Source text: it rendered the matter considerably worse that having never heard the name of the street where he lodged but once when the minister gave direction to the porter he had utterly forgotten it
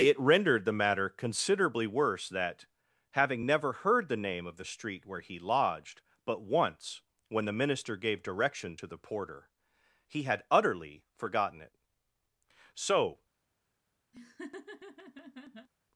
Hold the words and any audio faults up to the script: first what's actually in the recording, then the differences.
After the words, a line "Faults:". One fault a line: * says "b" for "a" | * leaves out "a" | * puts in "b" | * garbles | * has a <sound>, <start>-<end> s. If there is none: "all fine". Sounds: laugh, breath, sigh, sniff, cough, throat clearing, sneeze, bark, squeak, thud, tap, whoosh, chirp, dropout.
it rendered the matter considerably worse that having never heard the name of the street where he lodged but once when the minister gave direction to the porter he had utterly forgotten it so
Faults:
* puts in "so"
* has a laugh, 14.1-15.7 s